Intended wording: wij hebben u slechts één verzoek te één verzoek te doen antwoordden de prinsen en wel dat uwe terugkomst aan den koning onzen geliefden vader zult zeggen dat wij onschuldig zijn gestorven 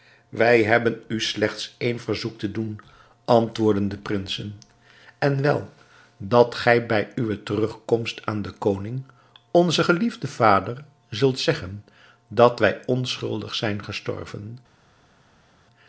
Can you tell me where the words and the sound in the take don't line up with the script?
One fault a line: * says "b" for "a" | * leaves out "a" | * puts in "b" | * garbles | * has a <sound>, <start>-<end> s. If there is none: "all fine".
* leaves out "één verzoek te"
* puts in "gij bij"